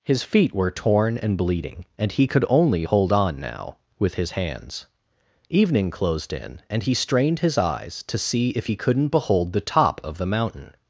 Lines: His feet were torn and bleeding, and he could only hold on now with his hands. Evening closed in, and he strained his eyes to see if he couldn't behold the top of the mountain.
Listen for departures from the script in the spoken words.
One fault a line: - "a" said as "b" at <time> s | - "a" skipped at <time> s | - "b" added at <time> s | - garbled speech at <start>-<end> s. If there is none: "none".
none